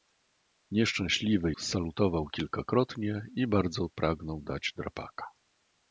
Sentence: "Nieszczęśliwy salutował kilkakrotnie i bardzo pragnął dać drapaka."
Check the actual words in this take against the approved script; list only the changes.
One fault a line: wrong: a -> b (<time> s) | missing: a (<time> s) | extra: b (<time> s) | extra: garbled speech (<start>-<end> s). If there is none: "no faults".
no faults